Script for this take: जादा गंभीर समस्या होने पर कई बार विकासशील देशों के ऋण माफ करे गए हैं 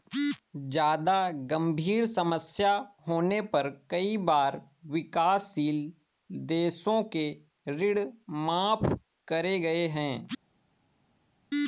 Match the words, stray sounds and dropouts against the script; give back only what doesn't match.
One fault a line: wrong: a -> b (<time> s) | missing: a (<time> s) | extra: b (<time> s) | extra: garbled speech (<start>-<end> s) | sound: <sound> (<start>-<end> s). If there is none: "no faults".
no faults